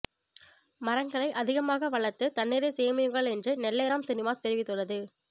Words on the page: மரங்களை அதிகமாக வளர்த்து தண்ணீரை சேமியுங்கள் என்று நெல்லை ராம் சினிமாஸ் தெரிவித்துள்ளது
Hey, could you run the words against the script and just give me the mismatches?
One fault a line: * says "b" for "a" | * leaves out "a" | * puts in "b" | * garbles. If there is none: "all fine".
all fine